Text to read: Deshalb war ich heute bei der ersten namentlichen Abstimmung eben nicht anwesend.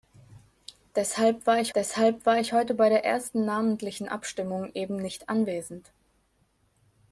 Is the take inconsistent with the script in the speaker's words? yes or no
yes